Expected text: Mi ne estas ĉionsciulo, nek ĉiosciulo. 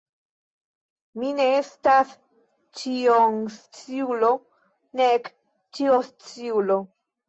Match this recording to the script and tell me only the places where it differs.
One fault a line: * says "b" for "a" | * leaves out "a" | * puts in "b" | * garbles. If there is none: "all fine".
all fine